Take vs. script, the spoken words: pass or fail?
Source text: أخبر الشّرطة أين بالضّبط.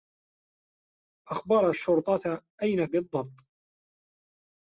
pass